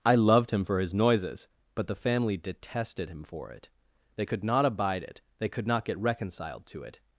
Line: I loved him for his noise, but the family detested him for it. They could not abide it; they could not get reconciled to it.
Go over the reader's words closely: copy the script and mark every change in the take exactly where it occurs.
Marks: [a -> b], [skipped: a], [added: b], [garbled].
I loved him for his [noise, -> noises] but the family detested him for it. They could not abide it; they could not get reconciled to it.